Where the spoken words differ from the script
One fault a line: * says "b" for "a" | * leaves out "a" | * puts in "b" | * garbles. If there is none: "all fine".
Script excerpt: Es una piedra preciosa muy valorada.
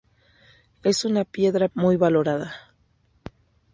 * leaves out "preciosa"